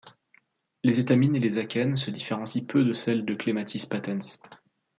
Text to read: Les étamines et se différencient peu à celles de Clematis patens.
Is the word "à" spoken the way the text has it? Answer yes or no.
no